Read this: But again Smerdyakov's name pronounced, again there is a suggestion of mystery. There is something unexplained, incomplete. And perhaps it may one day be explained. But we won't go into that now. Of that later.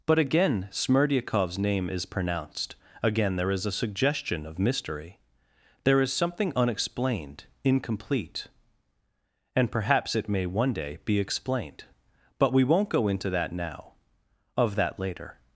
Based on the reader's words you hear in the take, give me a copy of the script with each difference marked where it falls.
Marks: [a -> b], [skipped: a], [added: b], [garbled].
But again Smerdyakov's name [added: is] pronounced, again there is a suggestion of mystery. There is something unexplained, incomplete. And perhaps it may one day be explained. But we won't go into that now. Of that later.